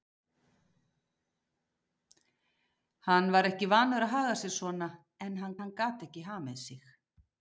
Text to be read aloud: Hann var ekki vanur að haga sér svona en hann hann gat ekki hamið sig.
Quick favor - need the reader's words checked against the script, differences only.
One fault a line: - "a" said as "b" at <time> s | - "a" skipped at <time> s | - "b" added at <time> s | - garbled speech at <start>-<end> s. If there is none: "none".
none